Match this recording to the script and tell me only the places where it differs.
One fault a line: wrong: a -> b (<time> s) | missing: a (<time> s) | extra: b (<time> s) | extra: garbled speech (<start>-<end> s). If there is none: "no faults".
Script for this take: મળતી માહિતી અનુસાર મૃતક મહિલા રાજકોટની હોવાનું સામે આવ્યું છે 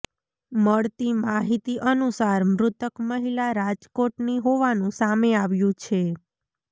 no faults